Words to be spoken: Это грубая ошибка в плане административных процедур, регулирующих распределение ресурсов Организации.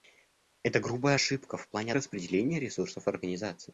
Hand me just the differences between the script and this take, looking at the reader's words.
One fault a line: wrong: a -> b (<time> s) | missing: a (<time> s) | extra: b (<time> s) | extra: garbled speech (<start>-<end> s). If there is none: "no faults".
missing: административных процедур регулирующих (1.9 s)